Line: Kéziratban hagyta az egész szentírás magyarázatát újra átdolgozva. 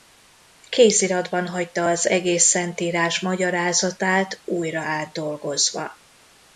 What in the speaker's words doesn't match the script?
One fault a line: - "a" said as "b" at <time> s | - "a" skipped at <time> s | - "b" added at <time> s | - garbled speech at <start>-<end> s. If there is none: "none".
none